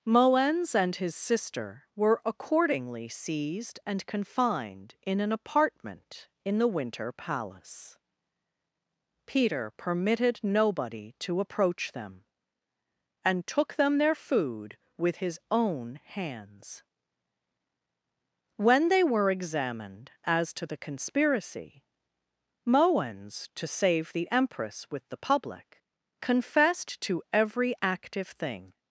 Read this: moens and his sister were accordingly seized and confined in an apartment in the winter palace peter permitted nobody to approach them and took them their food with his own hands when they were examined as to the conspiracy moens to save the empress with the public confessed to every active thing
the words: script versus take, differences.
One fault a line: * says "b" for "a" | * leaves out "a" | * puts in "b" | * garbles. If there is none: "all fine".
all fine